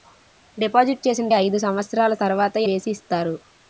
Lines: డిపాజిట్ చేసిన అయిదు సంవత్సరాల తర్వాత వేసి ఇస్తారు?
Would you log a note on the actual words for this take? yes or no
no